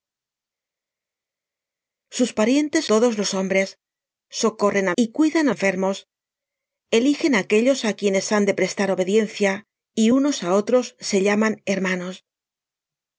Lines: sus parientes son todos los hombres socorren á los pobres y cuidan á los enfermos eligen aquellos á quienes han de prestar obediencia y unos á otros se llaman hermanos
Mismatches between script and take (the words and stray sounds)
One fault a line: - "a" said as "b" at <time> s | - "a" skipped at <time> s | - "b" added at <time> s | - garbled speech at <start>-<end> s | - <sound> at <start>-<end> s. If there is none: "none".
- "son" skipped at 2.8 s
- "los pobres" skipped at 4.9 s
- "los" skipped at 5.5 s